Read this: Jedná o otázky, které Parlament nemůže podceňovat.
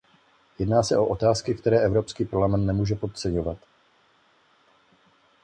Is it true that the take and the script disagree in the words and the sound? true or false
true